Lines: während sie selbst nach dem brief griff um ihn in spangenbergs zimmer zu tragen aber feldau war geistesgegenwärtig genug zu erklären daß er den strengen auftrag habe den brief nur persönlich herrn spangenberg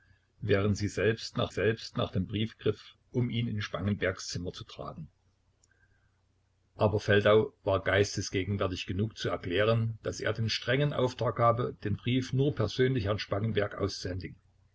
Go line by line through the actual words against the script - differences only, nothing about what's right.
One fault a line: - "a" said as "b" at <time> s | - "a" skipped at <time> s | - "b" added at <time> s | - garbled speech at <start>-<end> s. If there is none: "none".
- "selbst nach" added at 1.5 s